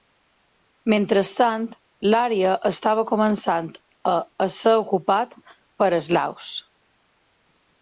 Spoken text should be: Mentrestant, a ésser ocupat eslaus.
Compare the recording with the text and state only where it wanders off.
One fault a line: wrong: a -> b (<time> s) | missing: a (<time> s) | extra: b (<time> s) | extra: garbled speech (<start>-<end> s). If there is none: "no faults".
extra: l'àrea estava començant (2.1 s)
extra: per (5.8 s)